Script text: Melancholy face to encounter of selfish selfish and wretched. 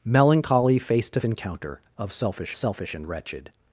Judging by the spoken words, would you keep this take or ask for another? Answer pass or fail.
pass